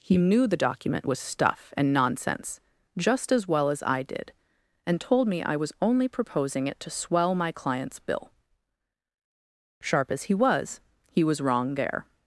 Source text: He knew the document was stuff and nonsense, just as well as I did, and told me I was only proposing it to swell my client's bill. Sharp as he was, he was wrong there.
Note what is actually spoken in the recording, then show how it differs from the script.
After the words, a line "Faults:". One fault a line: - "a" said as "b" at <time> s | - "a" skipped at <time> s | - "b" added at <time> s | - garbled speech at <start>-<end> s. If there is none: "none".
He knew the document was stuff and nonsense, just as well as I did, and told me I was only proposing it to swell my client's bill. Sharp as he was, he was wrong there.
Faults:
none